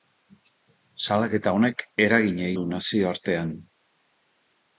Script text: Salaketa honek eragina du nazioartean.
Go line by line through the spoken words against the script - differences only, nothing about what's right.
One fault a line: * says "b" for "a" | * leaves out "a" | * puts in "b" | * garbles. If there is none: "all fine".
all fine